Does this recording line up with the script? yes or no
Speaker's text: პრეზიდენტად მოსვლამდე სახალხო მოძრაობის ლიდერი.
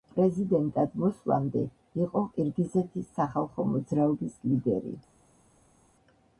no